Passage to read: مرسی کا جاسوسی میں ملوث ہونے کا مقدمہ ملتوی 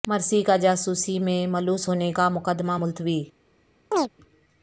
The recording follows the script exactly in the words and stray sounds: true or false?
false